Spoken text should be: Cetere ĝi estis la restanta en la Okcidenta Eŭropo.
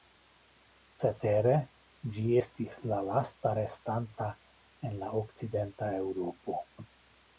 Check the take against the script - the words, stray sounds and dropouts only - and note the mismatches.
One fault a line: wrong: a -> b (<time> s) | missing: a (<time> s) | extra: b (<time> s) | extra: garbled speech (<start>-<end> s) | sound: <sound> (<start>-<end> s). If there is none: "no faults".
extra: lasta (3.1 s)